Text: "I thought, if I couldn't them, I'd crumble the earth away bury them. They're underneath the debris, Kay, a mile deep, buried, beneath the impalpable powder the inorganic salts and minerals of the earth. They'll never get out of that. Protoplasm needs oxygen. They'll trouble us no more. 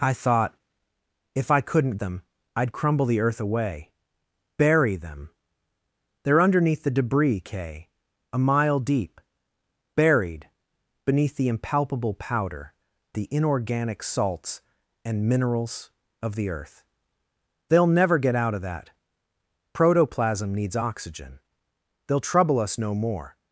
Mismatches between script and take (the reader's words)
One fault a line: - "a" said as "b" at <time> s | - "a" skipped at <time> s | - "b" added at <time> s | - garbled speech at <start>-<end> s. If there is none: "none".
none